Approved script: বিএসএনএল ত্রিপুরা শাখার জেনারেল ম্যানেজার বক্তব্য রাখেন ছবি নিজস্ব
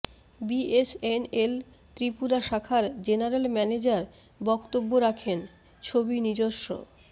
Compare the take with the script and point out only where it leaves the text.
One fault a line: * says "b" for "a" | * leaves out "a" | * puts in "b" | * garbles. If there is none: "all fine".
all fine